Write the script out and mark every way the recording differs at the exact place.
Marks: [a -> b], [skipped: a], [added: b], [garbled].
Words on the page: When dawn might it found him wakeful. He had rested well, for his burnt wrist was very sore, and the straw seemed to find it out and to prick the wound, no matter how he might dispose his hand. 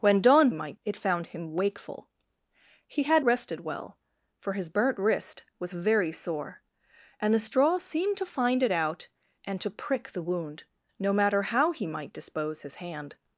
When dawn might it found him wakeful. He had rested well, for his burnt wrist was very sore, and the straw seemed to find it out and to prick the wound, no matter how he might dispose his hand.